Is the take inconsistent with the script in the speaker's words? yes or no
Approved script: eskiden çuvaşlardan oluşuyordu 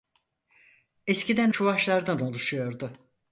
no